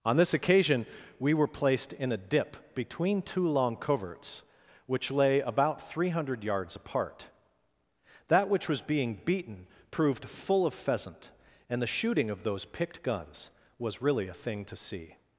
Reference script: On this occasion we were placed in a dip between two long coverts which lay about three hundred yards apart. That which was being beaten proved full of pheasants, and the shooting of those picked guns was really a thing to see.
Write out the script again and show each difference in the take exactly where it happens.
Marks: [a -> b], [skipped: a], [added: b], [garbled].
On this occasion we were placed in a dip between two long coverts which lay about three hundred yards apart. That which was being beaten proved full of [pheasants, -> pheasant] and the shooting of those picked guns was really a thing to see.